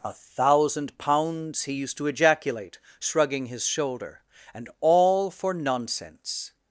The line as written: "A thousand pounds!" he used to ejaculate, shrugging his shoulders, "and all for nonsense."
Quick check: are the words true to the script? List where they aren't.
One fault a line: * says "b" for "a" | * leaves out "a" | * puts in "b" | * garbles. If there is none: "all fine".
* says "shoulder" for "shoulders"